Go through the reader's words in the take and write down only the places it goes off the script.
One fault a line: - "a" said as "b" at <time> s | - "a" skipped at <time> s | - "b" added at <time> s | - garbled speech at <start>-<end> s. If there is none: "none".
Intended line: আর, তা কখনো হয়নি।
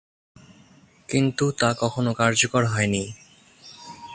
- "আর" said as "কিন্তু" at 1.1 s
- "কার্যকর" added at 2.1 s